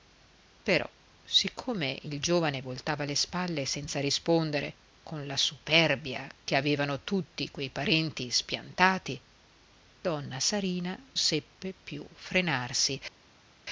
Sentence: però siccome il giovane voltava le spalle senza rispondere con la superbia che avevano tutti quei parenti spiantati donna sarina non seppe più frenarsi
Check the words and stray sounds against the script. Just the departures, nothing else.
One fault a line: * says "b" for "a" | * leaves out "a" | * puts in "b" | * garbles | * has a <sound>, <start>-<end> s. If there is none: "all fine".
* leaves out "non"